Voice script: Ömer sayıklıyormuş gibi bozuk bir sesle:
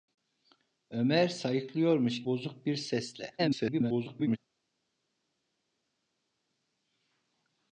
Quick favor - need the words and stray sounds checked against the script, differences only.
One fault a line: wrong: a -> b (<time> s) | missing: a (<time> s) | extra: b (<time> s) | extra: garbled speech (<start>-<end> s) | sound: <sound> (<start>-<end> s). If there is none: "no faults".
missing: gibi (2.2 s)
extra: garbled speech (3.4-4.4 s)